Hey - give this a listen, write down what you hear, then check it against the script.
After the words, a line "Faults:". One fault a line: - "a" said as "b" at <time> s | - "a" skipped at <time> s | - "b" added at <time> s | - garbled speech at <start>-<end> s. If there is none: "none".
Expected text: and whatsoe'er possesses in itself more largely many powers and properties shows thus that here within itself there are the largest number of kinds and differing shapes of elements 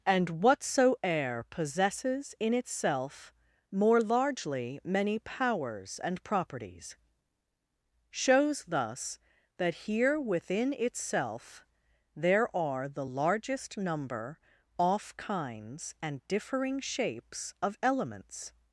and whatsoe'er possesses in itself more largely many powers and properties shows thus that here within itself there are the largest number off kinds and differing shapes of elements
Faults:
- "of" said as "off" at 14.8 s